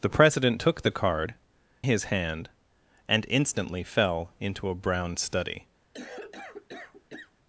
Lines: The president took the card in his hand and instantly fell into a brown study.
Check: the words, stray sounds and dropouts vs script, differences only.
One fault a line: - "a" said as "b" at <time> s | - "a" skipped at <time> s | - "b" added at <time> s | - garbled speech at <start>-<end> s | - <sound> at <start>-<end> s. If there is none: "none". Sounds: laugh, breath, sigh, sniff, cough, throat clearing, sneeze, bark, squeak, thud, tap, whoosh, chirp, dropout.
- "in" skipped at 1.3 s
- cough at 5.9-7.3 s